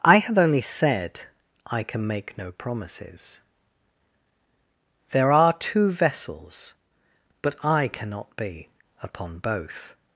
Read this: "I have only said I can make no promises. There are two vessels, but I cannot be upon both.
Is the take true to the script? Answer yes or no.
yes